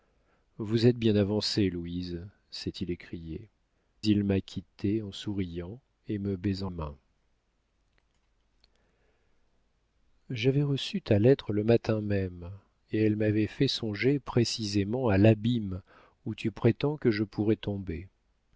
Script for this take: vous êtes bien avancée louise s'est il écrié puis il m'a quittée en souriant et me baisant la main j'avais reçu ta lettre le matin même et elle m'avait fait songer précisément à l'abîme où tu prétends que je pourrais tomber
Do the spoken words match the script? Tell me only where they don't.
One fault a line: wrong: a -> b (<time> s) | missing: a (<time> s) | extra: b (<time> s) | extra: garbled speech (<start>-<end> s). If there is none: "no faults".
missing: puis (3.5 s)
missing: la (6.7 s)